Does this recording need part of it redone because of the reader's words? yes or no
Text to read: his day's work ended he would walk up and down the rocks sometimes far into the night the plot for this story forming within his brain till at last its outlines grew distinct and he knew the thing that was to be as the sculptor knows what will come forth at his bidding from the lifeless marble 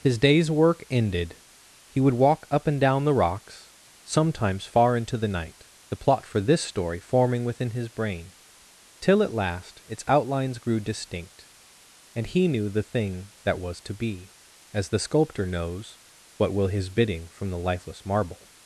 yes